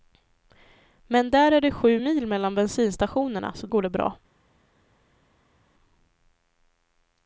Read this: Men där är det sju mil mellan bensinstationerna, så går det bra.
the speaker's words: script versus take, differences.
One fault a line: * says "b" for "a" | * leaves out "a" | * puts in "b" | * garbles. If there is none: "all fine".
all fine